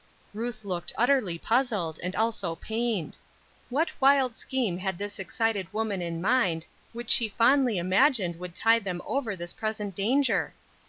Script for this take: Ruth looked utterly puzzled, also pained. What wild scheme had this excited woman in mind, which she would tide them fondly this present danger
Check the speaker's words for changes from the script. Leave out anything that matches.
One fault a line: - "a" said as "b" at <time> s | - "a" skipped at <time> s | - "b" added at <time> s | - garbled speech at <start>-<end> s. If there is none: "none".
- "and" added at 2.0 s
- "fondly imagined" added at 7.3 s
- "fondly" said as "over" at 9.1 s